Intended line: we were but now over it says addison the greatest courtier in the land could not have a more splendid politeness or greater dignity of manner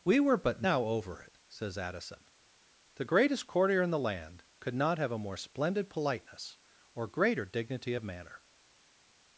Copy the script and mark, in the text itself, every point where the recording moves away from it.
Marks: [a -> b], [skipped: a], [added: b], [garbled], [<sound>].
we were but now over it says addison the greatest courtier in the land could not have a more splendid politeness or greater dignity of manner